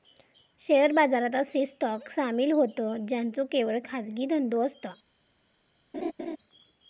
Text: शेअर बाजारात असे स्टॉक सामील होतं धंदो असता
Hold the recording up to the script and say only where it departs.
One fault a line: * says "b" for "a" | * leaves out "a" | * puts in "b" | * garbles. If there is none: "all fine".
* puts in "ज्यांचो केवळ खाजगी"